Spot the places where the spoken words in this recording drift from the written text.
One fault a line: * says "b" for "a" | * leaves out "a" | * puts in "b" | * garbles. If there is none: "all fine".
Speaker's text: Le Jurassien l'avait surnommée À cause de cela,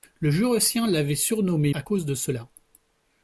all fine